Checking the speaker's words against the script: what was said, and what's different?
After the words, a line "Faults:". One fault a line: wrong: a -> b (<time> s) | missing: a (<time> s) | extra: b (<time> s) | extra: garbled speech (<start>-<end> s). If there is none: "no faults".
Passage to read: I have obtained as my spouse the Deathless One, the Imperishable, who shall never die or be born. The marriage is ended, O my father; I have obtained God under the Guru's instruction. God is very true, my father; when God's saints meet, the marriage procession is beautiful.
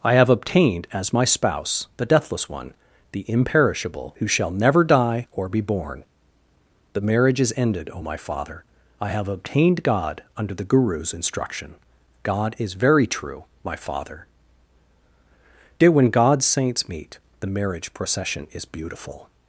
I have obtained as my spouse the Deathless One, the Imperishable, who shall never die or be born. The marriage is ended, O my father; I have obtained God under the Guru's instruction. God is very true, my father; dear when God's saints meet, the marriage procession is beautiful.
Faults:
extra: dear (15.8 s)